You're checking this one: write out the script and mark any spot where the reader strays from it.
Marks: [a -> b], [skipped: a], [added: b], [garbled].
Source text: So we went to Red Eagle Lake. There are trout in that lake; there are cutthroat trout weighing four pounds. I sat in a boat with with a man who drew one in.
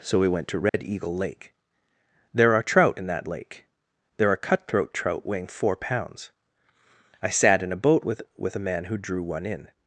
So we went to Red Eagle Lake. There are trout in that lake; there are cutthroat trout weighing four pounds. I sat in a boat with with a man who drew one in.